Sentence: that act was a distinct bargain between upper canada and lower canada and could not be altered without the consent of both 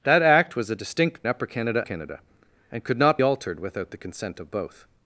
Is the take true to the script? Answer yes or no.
no